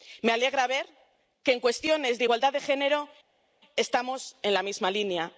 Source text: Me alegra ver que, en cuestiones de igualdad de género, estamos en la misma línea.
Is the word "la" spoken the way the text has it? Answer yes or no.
yes